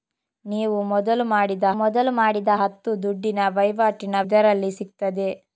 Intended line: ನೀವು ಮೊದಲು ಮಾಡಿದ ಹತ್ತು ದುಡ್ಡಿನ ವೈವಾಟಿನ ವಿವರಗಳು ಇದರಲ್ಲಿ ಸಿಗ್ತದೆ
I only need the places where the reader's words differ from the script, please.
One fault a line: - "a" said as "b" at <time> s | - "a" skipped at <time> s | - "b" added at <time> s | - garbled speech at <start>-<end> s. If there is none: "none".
- "ಮೊದಲು ಮಾಡಿದ" added at 1.8 s
- "ವಿವರಗಳು" skipped at 4.2 s